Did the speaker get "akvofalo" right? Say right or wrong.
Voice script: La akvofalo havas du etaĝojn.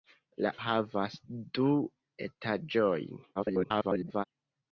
wrong